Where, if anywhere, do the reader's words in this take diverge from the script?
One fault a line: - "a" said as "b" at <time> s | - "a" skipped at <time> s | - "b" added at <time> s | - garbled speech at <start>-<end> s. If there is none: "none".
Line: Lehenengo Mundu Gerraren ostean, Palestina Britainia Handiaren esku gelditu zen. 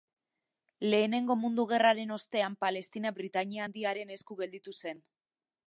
none